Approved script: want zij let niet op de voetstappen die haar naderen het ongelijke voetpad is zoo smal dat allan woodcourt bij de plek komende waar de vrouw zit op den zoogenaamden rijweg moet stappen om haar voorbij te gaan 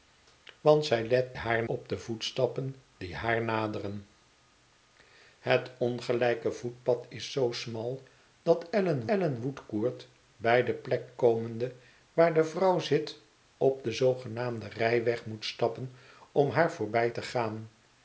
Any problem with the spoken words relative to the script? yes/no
yes